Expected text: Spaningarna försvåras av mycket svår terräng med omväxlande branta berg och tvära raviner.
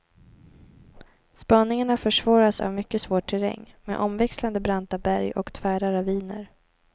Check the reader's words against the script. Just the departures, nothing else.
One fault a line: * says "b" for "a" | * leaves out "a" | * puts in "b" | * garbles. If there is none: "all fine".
all fine